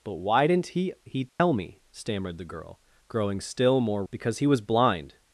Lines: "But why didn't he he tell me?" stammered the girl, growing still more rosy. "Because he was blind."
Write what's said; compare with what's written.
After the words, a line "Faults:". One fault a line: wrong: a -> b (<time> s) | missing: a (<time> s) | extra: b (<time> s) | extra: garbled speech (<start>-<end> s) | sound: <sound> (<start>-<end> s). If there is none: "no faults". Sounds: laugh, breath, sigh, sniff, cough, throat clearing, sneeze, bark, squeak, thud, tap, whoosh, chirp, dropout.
"But why didn't he he tell me?" stammered the girl, growing still more. "Because he was blind."
Faults:
sound: dropout (1.3-1.4 s)
missing: rosy (4.0 s)